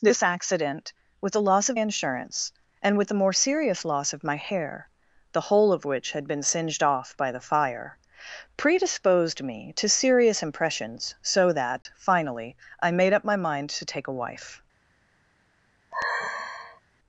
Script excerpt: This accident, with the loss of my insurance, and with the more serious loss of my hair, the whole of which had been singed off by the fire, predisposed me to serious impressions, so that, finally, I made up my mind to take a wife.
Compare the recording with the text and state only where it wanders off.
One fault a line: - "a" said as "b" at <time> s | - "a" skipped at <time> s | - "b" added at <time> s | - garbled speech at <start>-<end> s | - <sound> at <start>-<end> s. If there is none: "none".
- "my" skipped at 1.8 s
- dropout at 11.8-11.9 s
- sigh at 15.9-16.8 s